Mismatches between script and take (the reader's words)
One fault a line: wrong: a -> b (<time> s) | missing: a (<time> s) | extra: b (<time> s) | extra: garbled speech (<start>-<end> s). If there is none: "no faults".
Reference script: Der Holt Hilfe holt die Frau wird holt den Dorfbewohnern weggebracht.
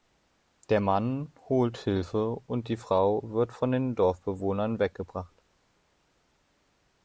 extra: Mann (0.8 s)
wrong: holt -> und (2.5 s)
wrong: holt -> von (3.5 s)